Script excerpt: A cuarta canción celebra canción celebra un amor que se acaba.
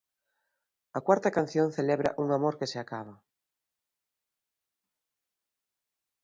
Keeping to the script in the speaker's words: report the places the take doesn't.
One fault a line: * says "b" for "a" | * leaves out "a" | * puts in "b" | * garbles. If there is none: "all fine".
* leaves out "canción celebra"